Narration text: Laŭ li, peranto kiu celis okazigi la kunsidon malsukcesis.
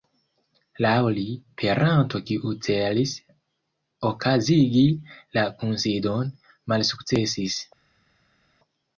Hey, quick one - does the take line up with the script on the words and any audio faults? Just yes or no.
yes